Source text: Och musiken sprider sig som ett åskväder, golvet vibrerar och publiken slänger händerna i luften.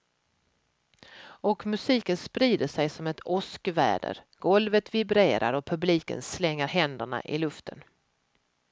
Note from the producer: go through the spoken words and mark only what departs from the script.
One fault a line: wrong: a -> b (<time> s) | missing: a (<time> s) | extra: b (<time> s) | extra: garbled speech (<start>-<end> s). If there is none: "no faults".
no faults